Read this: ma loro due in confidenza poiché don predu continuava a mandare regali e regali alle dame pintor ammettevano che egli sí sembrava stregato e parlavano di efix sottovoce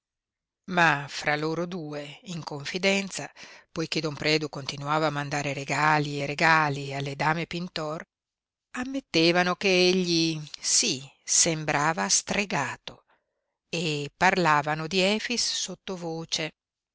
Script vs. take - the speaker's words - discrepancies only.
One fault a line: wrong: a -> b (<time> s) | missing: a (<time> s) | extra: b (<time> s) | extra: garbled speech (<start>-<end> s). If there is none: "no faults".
extra: fra (1.1 s)